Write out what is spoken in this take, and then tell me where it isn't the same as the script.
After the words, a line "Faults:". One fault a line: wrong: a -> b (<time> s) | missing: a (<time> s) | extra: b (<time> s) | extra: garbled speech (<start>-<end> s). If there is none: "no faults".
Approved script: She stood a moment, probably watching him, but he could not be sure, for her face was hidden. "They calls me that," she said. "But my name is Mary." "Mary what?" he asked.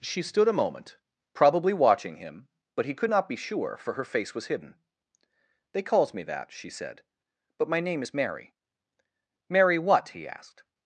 She stood a moment, probably watching him, but he could not be sure, for her face was hidden. "They calls me that," she said. "But my name is Mary." "Mary what?" he asked.
Faults:
no faults